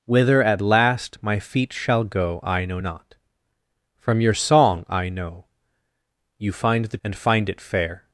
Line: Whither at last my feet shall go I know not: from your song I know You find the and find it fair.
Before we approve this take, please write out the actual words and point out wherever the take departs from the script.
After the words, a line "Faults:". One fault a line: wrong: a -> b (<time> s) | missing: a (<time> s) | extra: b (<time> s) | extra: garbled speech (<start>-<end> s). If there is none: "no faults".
Whither at last my feet shall go I know not: from your song I know You find the and find it fair.
Faults:
no faults